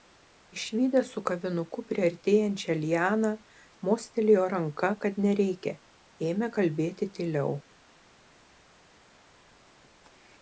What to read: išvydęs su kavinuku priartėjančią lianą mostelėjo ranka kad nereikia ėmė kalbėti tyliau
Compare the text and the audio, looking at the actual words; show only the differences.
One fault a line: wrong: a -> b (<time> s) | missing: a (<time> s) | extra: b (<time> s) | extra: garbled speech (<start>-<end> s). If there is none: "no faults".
no faults